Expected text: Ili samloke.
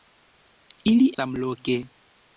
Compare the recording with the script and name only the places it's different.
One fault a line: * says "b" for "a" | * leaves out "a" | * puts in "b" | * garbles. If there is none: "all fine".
all fine